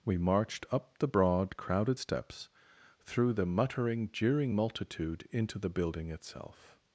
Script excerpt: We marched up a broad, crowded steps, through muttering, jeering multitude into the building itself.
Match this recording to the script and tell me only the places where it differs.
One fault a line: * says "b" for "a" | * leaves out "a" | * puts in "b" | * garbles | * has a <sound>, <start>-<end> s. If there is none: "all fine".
* says "the" for "a"
* puts in "the"